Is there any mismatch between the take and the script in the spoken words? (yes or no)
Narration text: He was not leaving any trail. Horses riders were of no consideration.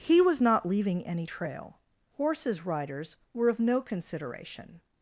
no